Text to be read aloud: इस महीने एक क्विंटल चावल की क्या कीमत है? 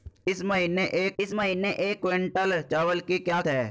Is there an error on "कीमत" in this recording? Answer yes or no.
yes